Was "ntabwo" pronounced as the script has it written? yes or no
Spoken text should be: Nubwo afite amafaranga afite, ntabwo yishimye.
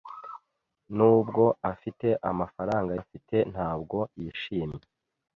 yes